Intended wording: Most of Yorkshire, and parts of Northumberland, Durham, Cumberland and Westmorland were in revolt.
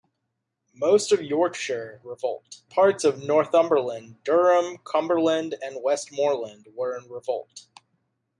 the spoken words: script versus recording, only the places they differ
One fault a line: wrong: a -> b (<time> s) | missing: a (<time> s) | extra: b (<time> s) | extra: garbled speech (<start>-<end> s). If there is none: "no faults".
wrong: and -> revolt (2.0 s)